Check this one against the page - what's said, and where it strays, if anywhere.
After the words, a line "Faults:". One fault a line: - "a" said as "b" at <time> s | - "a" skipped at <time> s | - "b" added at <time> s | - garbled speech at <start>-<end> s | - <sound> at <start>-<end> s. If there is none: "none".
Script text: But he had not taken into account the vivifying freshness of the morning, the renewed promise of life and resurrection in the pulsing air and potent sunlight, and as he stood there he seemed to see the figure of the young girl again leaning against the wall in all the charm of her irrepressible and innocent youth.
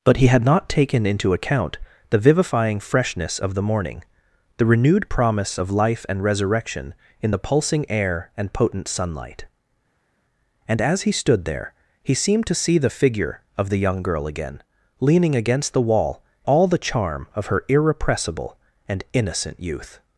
But he had not taken into account the vivifying freshness of the morning, the renewed promise of life and resurrection in the pulsing air and potent sunlight, and as he stood there he seemed to see the figure of the young girl again leaning against the wall all the charm of her irrepressible and innocent youth.
Faults:
- "in" skipped at 16.2 s